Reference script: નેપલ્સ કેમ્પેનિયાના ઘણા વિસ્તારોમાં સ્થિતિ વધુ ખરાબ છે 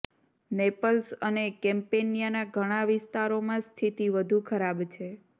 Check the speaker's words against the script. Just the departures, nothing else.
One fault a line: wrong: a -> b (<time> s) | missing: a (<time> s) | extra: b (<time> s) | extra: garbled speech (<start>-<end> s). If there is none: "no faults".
extra: અને (1.2 s)